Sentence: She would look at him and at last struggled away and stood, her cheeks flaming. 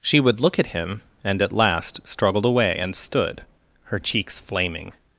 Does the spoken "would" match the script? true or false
true